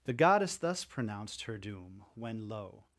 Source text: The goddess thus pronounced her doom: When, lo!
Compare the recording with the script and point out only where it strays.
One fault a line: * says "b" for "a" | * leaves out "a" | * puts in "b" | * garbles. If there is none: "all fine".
all fine